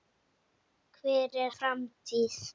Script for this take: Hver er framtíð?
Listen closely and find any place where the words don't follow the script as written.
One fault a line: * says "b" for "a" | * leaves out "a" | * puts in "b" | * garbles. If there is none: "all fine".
all fine